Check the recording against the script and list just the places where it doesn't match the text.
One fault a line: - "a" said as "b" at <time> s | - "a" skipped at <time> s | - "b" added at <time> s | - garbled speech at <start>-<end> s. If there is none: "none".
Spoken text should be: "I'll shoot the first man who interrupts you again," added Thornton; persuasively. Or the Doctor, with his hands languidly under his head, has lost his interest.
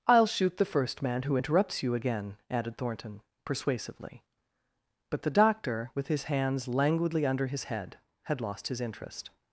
- "Or" said as "But" at 5.1 s
- "has" said as "had" at 8.2 s